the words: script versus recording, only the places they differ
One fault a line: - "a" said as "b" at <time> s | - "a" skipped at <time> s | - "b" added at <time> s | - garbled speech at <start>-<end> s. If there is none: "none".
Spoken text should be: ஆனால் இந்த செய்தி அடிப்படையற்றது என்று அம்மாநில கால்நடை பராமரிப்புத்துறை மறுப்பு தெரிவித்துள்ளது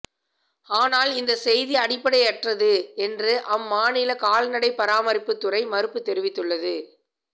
none